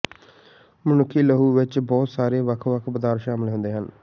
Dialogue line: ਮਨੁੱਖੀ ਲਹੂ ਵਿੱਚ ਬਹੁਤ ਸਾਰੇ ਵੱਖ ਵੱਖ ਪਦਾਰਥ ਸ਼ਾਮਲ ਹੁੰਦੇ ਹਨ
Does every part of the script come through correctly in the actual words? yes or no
yes